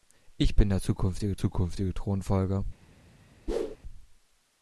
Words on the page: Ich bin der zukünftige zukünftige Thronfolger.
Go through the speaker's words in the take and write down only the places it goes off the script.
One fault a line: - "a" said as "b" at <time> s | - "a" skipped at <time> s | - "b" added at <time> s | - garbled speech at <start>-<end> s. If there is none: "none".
none